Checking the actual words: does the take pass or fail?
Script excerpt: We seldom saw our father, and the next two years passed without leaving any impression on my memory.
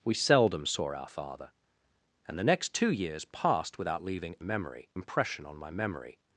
fail